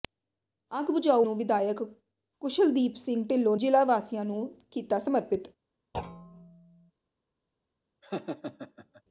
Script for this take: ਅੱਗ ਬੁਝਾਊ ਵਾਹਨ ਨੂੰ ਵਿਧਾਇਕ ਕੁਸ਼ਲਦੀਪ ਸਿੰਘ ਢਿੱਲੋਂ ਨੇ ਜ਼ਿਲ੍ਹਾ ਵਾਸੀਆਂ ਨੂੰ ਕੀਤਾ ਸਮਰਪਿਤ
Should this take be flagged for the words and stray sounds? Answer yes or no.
yes